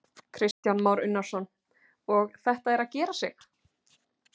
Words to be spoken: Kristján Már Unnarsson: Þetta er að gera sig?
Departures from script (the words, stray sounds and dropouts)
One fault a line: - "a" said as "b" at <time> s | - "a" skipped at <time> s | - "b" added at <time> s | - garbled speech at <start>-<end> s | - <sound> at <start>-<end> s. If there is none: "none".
- dropout at 0.5-0.6 s
- "Og" added at 2.2 s